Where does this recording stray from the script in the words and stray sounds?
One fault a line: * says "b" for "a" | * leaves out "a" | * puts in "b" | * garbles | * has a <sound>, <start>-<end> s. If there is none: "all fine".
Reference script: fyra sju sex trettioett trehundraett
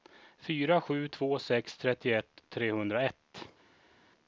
* puts in "två"